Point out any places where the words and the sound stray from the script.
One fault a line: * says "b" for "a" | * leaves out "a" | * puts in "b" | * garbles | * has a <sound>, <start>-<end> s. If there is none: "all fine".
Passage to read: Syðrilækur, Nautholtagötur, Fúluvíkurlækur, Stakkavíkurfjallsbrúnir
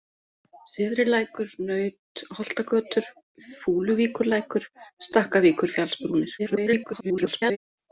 * garbles